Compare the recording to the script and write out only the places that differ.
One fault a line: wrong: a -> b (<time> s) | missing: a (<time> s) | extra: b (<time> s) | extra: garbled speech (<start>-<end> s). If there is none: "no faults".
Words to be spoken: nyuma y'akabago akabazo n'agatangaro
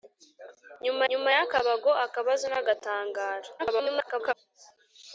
extra: nyuma (1.1 s)
extra: garbled speech (3.6-4.3 s)